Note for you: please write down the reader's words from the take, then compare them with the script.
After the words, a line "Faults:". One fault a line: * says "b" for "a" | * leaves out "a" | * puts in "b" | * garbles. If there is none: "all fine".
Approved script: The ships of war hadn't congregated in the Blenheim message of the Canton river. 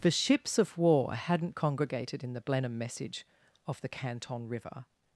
The ships of war hadn't congregated in the Blenheim message of the Canton river.
Faults:
all fine